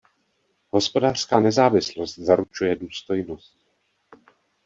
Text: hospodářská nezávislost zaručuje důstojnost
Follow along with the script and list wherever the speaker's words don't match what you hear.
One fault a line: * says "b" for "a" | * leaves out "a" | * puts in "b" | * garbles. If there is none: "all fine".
all fine